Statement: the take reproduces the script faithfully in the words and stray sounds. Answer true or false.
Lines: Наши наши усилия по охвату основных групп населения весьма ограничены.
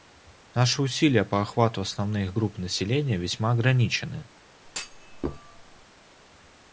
false